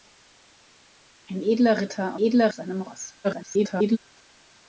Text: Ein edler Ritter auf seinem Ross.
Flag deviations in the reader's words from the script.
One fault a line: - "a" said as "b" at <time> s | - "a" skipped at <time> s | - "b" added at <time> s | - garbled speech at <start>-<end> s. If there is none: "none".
- "auf" said as "edler" at 2.2 s
- garbled speech at 3.2-4.0 s